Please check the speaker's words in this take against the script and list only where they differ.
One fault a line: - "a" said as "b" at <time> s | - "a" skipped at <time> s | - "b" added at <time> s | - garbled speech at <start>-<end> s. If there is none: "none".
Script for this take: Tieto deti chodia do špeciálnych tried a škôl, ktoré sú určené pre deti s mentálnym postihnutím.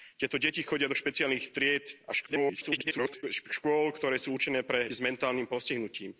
- garbled speech at 2.3-3.2 s
- "deti" skipped at 4.9 s